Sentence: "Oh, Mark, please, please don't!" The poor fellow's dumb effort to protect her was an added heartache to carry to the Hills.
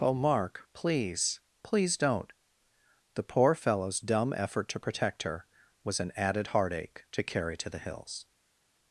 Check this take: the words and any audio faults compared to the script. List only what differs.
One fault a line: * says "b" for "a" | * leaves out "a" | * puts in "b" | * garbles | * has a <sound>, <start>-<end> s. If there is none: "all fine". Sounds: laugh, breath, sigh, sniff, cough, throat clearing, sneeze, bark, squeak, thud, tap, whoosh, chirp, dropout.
all fine